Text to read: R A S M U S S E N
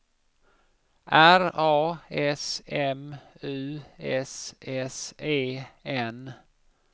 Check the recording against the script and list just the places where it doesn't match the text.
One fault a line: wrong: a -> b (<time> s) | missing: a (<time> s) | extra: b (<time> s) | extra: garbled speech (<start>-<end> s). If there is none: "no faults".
no faults